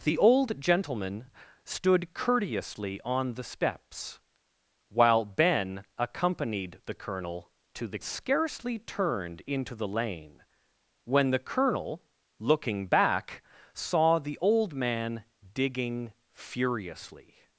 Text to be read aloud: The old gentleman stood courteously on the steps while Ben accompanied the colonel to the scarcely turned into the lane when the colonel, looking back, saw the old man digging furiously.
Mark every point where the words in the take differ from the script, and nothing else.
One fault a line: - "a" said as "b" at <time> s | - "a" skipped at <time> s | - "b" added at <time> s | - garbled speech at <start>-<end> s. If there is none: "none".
none